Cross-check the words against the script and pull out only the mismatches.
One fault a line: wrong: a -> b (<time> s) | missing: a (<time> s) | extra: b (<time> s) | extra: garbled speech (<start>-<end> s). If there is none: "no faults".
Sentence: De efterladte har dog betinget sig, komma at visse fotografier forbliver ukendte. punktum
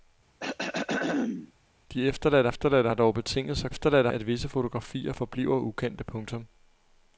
extra: efterladte (2.5 s)
wrong: komma -> efterladte (3.7 s)